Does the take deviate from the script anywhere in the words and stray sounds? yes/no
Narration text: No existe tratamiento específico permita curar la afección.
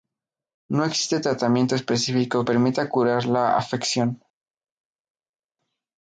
no